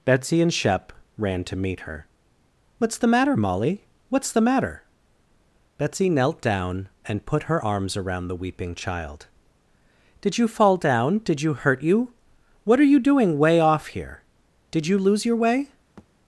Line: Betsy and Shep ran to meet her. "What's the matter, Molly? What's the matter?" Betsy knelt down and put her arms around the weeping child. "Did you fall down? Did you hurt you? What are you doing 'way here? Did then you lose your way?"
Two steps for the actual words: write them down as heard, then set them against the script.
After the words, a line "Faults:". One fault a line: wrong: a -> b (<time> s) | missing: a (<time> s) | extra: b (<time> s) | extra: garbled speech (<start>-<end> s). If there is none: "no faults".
Betsy and Shep ran to meet her. "What's the matter, Molly? What's the matter?" Betsy knelt down and put her arms around the weeping child. "Did you fall down? Did you hurt you? What are you doing 'way off here? Did you lose your way?"
Faults:
extra: off (13.6 s)
missing: then (14.9 s)